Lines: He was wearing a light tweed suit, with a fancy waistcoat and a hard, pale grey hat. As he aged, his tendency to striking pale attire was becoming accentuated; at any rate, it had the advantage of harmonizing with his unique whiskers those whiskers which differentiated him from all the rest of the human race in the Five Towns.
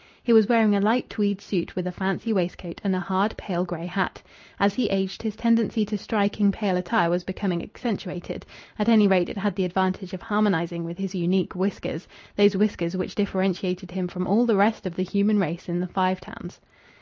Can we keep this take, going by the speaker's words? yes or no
yes